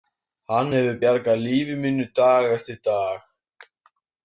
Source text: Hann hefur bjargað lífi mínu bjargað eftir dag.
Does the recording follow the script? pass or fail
fail